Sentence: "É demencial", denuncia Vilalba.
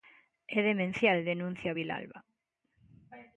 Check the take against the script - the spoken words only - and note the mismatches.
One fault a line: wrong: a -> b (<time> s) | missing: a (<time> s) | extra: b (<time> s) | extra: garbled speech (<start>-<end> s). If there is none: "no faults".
no faults